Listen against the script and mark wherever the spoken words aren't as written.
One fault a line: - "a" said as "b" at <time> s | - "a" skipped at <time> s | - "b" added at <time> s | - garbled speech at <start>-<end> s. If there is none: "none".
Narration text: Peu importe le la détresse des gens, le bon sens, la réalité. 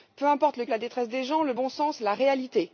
none